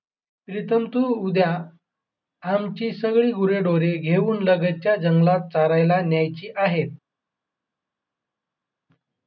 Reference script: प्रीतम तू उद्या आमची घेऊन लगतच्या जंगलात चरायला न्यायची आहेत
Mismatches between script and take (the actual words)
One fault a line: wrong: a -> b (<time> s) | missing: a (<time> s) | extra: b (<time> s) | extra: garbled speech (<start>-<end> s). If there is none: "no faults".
extra: सगळी गुरेढोरे (2.9 s)